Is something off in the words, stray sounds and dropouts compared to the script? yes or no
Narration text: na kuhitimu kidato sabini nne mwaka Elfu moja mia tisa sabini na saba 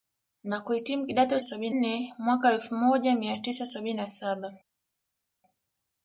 no